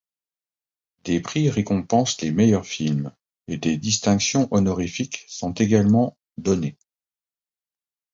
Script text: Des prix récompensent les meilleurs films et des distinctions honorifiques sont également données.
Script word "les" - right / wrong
right